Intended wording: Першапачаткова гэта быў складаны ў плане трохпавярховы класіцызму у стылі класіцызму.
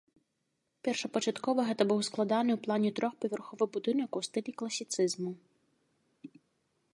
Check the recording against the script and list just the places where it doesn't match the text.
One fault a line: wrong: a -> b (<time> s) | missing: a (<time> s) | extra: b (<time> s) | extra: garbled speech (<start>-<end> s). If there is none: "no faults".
wrong: класіцызму -> будынак (3.8 s)